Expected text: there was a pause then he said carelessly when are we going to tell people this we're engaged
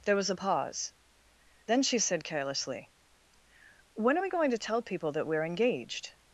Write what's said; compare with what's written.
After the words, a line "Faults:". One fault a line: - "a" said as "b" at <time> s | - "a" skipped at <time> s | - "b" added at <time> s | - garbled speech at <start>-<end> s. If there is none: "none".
there was a pause then she said carelessly when are we going to tell people that we're engaged
Faults:
- "he" said as "she" at 1.8 s
- "this" said as "that" at 5.1 s